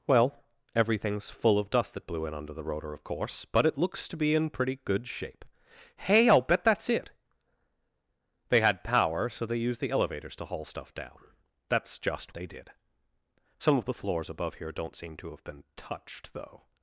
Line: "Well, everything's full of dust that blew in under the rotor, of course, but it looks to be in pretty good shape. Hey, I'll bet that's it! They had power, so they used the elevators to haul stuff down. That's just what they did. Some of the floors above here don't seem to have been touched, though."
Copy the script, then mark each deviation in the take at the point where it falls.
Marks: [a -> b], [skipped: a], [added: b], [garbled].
"Well, everything's full of dust that blew in under the rotor, of course, but it looks to be in pretty good shape. Hey, I'll bet that's it! They had power, so they used the elevators to haul stuff down. That's just [skipped: what] they did. Some of the floors above here don't seem to have been touched, though."